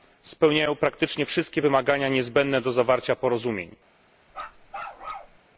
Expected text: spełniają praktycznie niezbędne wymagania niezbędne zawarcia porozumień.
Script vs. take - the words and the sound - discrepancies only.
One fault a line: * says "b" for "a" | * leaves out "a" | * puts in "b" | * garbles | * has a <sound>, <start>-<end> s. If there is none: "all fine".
* says "wszystkie" for "niezbędne"
* puts in "do"
* has a bark, 4.3-5.4 s